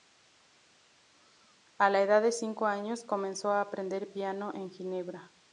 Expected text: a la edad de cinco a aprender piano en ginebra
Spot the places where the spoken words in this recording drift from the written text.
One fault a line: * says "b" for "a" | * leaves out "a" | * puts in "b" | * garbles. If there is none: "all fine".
* puts in "años comenzó"